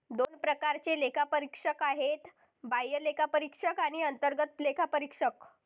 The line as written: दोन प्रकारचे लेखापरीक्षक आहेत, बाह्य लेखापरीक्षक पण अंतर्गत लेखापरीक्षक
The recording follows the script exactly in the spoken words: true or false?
false